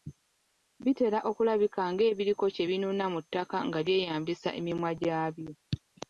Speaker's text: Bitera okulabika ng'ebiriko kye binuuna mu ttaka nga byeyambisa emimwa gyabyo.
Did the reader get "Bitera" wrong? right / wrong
right